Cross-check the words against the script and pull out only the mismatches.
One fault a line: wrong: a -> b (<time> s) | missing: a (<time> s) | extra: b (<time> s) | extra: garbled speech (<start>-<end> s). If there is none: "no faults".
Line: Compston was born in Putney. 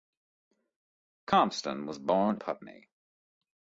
missing: in (2.4 s)